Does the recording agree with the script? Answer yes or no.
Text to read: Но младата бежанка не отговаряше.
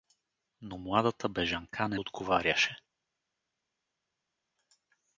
yes